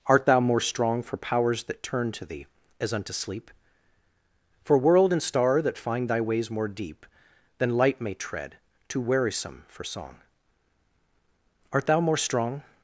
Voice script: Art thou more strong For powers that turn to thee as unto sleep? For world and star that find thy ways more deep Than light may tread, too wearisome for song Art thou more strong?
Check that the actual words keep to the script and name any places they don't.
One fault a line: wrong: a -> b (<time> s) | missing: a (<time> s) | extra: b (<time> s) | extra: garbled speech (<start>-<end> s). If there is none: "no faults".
no faults